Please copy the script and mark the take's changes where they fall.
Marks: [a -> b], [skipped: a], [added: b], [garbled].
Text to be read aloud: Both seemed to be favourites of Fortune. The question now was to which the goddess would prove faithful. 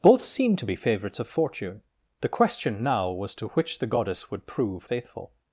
Both seemed to be favourites of Fortune. The question now was to which the goddess would prove faithful.